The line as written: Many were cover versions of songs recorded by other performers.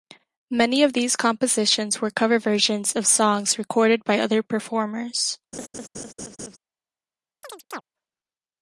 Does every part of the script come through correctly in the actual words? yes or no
no